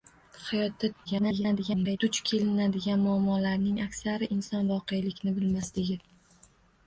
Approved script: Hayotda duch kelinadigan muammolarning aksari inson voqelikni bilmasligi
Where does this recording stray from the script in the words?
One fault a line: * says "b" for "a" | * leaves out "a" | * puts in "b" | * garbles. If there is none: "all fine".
* garbles